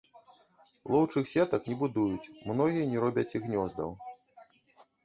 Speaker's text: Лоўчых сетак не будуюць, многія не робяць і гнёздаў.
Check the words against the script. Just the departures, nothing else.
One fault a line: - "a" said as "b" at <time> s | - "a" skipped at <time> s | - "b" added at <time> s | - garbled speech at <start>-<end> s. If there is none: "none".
none